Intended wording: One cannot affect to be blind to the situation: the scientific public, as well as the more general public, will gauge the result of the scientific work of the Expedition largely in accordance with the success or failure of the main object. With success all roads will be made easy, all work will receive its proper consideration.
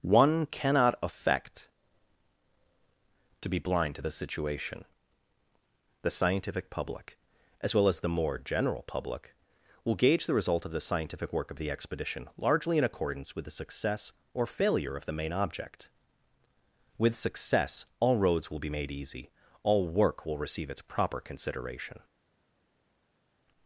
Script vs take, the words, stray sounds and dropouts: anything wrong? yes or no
no